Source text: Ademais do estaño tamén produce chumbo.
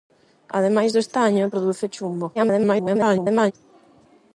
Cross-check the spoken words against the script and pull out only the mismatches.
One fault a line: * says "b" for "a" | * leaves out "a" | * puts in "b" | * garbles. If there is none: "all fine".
* leaves out "tamén"
* garbles